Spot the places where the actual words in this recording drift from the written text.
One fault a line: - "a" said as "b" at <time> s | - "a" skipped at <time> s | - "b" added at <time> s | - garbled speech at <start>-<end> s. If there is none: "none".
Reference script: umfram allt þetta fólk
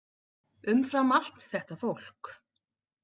none